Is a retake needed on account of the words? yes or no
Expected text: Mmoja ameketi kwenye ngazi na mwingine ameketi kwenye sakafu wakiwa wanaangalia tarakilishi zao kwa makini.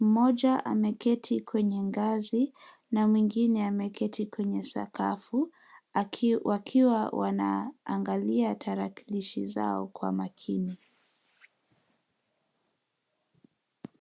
no